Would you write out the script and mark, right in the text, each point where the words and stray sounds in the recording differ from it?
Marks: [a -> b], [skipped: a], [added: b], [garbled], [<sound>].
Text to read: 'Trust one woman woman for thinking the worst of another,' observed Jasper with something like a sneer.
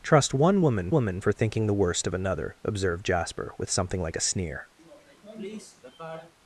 'Trust one woman woman for thinking the worst of another,' observed Jasper with something like a sneer. [sniff]